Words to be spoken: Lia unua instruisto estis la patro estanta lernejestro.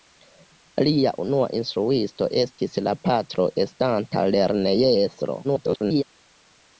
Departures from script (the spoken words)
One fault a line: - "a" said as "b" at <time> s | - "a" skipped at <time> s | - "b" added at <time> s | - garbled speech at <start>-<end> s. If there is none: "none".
- garbled speech at 5.4-6.0 s